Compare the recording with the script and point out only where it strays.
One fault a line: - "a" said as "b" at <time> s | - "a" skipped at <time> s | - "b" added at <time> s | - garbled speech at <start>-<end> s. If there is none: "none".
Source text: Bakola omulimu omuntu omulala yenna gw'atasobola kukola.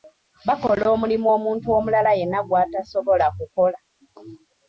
none